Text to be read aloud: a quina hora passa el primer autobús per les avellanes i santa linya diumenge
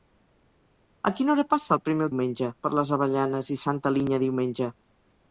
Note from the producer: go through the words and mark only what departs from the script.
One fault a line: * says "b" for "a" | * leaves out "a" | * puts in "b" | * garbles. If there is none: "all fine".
* says "diumenge" for "autobús"